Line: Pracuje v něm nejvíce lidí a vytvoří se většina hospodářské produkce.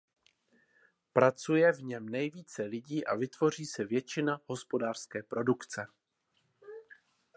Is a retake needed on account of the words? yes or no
no